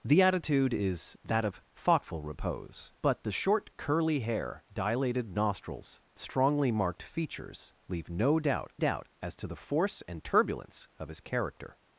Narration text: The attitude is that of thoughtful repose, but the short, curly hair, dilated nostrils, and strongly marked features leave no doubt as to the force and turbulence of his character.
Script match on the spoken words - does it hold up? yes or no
no